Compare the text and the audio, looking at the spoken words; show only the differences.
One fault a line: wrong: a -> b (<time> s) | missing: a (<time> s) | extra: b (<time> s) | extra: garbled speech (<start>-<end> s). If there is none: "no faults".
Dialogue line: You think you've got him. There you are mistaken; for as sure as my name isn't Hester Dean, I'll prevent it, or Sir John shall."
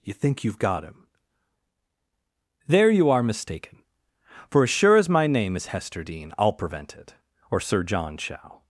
wrong: isn't -> is (5.5 s)